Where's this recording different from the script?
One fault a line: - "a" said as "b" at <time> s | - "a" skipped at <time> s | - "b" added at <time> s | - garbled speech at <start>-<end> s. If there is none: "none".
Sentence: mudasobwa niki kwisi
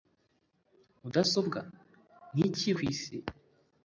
none